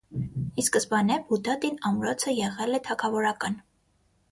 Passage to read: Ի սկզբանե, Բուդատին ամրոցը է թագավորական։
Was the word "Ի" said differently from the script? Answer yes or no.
no